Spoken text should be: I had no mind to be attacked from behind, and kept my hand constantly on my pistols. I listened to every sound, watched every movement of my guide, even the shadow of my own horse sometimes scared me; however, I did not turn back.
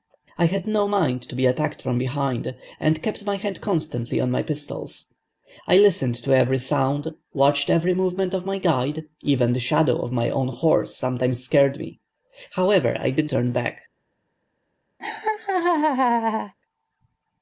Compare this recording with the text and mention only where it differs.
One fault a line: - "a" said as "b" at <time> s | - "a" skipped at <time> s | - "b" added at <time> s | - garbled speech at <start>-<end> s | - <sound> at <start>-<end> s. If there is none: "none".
- "not" skipped at 13.3 s
- laugh at 15.0-16.5 s